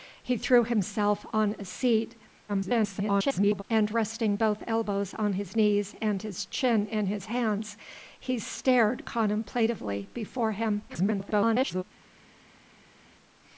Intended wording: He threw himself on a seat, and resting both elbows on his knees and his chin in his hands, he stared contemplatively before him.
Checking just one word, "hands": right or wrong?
right